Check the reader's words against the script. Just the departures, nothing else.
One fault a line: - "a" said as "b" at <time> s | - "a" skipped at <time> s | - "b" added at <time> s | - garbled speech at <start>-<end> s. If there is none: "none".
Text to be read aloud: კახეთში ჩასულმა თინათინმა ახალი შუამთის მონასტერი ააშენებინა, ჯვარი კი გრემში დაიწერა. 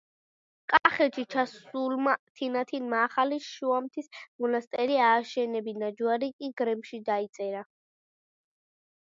none